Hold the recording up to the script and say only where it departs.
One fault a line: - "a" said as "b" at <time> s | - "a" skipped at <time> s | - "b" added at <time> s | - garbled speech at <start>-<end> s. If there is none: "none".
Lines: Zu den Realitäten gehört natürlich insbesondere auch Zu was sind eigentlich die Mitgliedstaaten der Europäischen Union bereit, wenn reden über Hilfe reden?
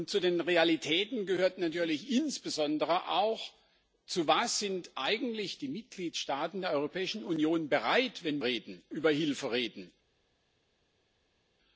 none